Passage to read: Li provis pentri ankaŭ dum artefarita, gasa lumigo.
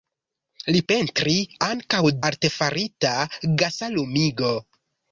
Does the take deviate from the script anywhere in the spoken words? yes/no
yes